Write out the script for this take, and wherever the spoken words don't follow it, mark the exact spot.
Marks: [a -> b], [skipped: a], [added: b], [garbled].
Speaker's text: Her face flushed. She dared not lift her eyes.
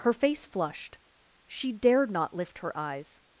Her face flushed. She dared not lift her eyes.